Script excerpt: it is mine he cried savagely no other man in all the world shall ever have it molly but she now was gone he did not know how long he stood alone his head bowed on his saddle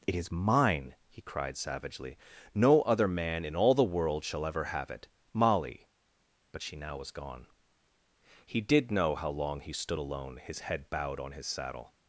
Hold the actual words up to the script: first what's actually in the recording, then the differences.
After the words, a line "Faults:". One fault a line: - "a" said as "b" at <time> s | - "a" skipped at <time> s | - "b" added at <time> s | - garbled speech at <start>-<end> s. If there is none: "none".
it is mine he cried savagely no other man in all the world shall ever have it molly but she now was gone he did know how long he stood alone his head bowed on his saddle
Faults:
- "not" skipped at 8.9 s